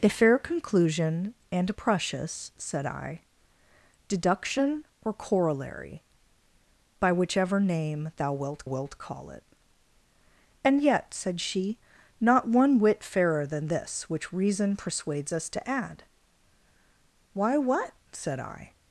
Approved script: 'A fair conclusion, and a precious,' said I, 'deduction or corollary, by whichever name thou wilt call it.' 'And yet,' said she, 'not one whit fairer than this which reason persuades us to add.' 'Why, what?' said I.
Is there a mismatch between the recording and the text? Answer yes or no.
yes